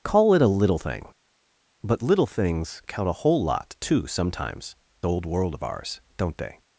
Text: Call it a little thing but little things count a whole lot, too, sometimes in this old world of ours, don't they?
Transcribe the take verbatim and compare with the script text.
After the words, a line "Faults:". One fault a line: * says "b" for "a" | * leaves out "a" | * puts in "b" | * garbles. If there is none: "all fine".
Call it a little thing but little things count a whole lot, too, sometimes old world of ours, don't they?
Faults:
* leaves out "in this"